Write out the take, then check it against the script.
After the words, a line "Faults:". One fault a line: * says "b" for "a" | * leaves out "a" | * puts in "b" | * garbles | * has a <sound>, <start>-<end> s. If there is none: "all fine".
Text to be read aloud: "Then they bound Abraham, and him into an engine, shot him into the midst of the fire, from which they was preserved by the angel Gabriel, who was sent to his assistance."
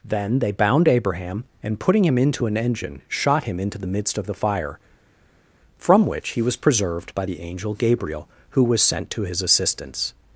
"Then they bound Abraham, and putting him into an engine, shot him into the midst of the fire, from which he was preserved by the angel Gabriel, who was sent to his assistance."
Faults:
* puts in "putting"
* says "he" for "they"